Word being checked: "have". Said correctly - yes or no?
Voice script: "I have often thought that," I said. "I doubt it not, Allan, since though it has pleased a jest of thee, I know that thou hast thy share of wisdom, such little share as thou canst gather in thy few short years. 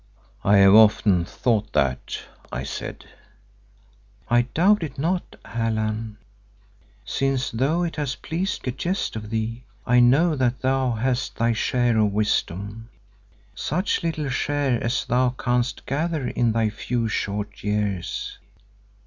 yes